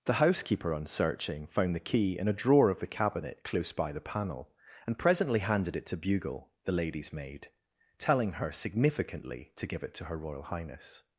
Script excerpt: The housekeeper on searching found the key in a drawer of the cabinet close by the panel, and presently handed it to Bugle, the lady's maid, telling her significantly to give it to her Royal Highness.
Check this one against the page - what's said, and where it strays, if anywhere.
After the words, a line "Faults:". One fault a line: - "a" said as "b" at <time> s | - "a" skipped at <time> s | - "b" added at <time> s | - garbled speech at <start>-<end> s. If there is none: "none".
The housekeeper on searching found the key in a drawer of the cabinet close by the panel, and presently handed it to Bugle, the lady's maid, telling her significantly to give it to her Royal Highness.
Faults:
none